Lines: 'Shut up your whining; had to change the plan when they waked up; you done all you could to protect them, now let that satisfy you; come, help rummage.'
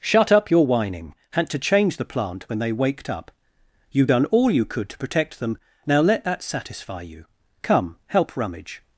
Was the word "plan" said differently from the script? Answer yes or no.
yes